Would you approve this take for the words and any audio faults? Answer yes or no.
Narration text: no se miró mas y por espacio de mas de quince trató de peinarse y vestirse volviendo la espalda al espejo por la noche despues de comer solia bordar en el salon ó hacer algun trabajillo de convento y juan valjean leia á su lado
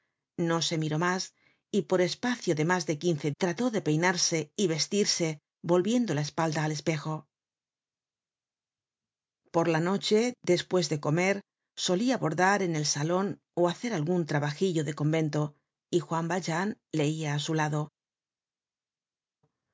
yes